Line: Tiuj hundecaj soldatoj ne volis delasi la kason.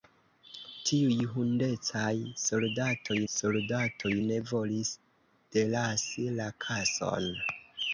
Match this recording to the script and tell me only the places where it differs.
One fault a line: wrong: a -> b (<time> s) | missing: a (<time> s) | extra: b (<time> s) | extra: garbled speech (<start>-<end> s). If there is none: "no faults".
extra: soldatoj (3.3 s)